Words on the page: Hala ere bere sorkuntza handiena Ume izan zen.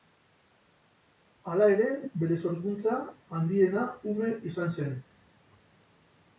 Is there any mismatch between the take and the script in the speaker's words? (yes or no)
no